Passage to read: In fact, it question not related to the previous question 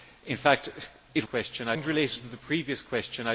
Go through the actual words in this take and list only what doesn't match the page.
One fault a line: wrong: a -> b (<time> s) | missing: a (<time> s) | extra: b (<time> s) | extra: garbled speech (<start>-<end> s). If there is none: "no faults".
no faults